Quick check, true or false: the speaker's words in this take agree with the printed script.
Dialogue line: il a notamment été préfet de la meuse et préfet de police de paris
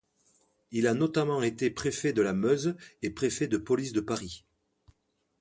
true